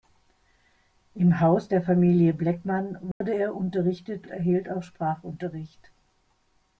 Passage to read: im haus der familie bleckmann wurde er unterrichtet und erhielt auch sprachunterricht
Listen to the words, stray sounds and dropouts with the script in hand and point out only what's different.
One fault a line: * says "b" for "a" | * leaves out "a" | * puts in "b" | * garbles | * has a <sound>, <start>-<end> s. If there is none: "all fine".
* has a dropout, 3.1-3.2 s
* leaves out "und"